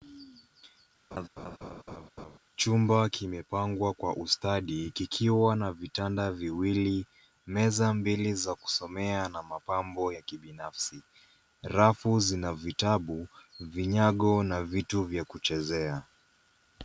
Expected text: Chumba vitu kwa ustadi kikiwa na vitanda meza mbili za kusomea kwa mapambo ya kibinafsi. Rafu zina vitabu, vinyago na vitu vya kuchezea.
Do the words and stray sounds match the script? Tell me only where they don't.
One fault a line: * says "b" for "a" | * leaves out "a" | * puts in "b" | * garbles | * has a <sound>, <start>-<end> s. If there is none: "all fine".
* has a laugh, 1.1-2.4 s
* says "kimepangwa" for "vitu"
* puts in "viwili"
* says "na" for "kwa"